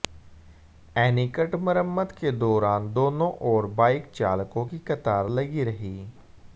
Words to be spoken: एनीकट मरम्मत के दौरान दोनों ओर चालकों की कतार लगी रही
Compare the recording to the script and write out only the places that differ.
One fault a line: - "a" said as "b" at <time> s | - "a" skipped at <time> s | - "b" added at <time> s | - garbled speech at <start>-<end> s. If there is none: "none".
- "बाइक" added at 3.8 s